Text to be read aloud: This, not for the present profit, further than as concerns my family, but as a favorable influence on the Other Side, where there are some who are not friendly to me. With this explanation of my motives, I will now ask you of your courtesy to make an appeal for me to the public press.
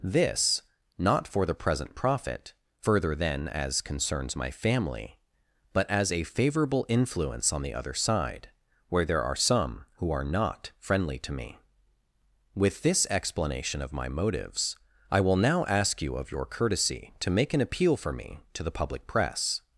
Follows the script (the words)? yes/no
yes